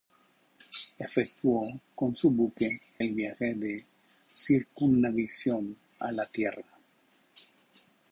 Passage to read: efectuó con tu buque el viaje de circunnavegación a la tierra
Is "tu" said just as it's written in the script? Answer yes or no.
no